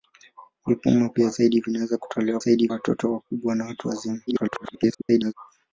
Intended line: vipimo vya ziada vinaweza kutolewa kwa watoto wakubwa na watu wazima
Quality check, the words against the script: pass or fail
fail